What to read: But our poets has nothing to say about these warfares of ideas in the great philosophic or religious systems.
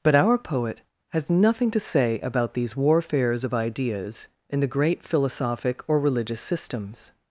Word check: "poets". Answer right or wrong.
wrong